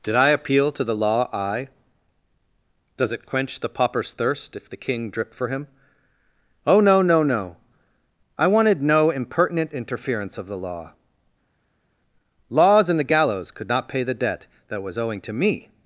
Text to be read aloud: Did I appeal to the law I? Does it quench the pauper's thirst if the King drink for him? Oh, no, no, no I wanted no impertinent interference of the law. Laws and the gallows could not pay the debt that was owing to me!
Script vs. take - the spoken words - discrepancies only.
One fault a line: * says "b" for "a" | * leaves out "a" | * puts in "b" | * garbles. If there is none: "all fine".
* says "drip" for "drink"